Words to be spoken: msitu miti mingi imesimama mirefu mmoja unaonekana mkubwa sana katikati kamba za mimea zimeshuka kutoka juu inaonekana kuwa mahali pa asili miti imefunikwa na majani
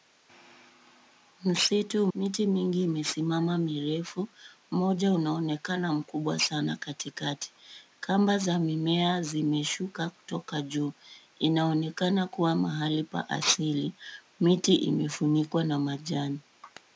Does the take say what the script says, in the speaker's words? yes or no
yes